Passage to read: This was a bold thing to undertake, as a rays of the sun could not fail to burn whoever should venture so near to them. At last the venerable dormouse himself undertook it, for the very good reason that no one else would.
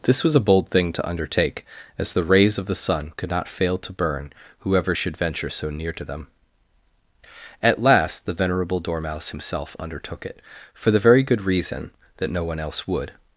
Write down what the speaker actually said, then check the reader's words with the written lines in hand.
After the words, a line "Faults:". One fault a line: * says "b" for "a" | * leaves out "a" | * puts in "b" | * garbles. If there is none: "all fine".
This was a bold thing to undertake, as the rays of the sun could not fail to burn whoever should venture so near to them. At last the venerable dormouse himself undertook it, for the very good reason that no one else would.
Faults:
* says "the" for "a"